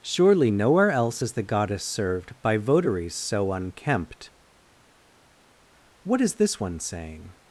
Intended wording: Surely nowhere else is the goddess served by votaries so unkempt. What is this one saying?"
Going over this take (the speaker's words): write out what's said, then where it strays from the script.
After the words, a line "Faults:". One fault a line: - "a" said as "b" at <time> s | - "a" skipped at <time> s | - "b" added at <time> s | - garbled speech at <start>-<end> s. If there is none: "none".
Surely nowhere else is the goddess served by votaries so unkempt. What is this one saying?"
Faults:
none